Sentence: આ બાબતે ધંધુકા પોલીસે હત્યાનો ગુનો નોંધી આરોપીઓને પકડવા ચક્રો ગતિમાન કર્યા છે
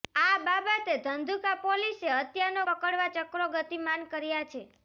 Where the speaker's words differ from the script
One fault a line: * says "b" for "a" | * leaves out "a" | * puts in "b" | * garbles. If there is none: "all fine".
* leaves out "ગુનો નોંધી આરોપીઓને"